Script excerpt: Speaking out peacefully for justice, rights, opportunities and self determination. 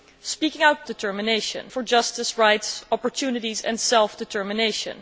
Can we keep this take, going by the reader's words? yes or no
no